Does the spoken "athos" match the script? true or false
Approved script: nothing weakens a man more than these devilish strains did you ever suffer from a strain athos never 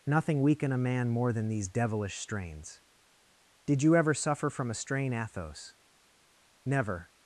true